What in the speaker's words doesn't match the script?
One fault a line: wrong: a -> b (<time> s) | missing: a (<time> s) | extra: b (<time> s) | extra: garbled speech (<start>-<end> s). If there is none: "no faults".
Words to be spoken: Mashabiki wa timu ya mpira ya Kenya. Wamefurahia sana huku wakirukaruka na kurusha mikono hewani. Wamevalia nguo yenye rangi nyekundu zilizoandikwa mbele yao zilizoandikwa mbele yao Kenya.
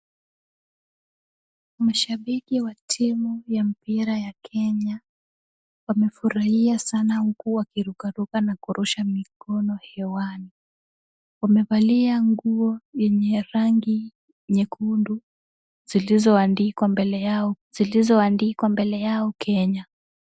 no faults